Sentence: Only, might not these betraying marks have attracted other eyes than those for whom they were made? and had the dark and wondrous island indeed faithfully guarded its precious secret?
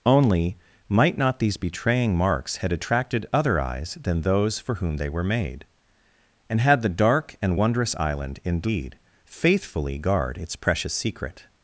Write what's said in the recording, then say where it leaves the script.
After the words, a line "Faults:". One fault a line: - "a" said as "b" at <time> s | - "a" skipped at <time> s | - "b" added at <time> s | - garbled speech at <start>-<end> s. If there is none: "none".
Only, might not these betraying marks had attracted other eyes than those for whom they were made? and had the dark and wondrous island indeed faithfully guard its precious secret?
Faults:
- "have" said as "had" at 2.6 s
- "guarded" said as "guard" at 10.0 s